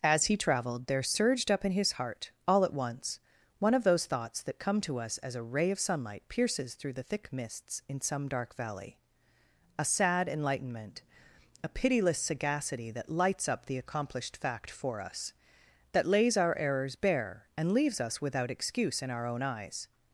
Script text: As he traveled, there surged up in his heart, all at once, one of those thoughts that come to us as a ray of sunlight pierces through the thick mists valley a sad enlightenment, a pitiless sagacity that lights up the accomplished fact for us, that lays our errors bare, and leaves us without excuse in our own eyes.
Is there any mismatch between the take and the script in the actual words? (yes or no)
yes